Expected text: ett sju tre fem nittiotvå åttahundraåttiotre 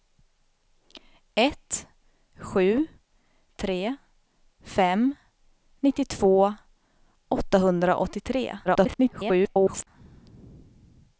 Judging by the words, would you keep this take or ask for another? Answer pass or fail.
fail